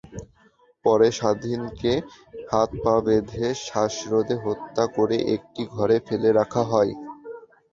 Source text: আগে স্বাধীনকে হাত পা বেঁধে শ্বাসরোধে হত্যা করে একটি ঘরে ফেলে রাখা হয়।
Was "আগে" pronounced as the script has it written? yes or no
no